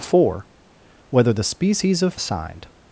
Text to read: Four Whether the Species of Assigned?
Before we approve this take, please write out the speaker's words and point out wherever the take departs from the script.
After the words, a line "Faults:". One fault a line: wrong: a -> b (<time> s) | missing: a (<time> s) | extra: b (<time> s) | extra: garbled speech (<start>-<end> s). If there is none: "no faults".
Four Whether the Species of Assigned?
Faults:
no faults